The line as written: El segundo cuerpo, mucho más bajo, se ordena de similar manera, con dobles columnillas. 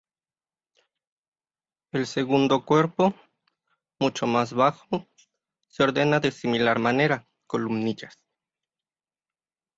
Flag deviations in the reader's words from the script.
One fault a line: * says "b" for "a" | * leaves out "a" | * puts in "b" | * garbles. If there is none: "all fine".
* leaves out "con dobles"